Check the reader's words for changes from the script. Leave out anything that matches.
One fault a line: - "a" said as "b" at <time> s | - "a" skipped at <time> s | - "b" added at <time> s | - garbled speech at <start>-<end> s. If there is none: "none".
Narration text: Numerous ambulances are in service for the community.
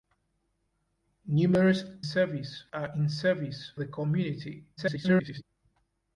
- "ambulances" said as "service" at 2.0 s
- "for" skipped at 3.7 s
- garbled speech at 4.8-5.4 s